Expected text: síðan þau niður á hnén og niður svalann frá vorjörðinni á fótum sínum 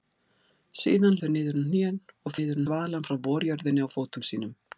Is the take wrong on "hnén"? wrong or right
right